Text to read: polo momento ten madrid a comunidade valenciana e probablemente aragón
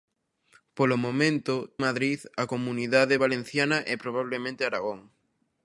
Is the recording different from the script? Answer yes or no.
yes